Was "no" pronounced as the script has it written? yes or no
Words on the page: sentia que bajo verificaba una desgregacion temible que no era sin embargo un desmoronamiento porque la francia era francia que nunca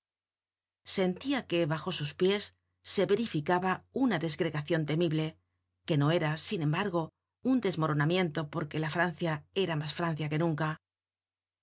yes